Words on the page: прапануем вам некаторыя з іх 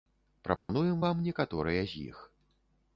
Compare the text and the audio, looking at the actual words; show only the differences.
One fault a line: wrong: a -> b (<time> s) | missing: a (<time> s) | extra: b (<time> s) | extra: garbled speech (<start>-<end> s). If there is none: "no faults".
no faults